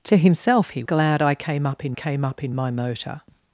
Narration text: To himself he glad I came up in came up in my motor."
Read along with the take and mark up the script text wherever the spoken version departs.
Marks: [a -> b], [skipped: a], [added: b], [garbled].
To himself he glad I came up in came up in my motor."